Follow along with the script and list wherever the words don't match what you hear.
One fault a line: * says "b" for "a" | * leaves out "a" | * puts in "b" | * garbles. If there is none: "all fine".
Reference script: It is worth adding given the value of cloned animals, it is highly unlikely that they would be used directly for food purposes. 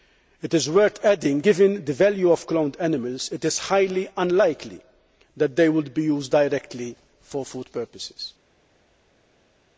all fine